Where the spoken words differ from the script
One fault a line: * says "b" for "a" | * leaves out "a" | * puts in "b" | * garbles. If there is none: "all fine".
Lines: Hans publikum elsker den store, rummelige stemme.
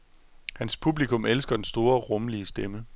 all fine